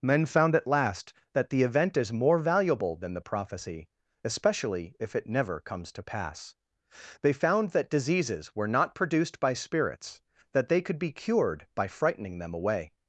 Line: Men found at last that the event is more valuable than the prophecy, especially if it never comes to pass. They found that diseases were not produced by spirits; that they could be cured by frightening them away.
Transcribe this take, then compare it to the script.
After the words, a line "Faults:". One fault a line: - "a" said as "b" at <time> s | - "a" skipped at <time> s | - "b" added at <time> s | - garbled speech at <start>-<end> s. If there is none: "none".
Men found at last that the event is more valuable than the prophecy, especially if it never comes to pass. They found that diseases were not produced by spirits; that they could be cured by frightening them away.
Faults:
none